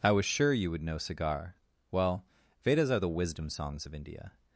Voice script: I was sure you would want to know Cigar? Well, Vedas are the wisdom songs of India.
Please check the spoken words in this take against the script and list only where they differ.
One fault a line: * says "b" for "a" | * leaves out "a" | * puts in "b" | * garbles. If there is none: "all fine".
* leaves out "want to"